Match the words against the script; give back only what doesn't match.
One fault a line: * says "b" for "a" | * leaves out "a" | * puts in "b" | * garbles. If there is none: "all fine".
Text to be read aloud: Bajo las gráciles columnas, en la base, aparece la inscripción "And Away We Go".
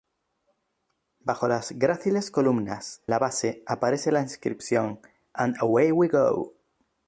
* leaves out "en"